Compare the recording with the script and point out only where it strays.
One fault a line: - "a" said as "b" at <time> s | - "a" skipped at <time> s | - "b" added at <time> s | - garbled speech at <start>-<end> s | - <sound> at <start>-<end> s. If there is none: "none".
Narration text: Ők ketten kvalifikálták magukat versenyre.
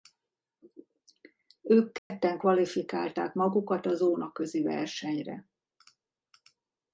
- dropout at 2.0-2.1 s
- "a zónaközi" added at 3.9 s